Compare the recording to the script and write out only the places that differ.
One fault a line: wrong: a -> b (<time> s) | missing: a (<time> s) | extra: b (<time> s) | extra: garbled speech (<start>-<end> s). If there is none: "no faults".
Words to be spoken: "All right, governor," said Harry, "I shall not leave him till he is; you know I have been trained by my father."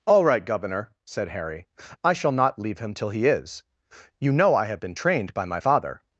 no faults